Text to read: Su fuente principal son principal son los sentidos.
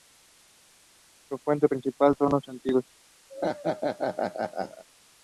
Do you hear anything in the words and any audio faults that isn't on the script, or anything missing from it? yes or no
yes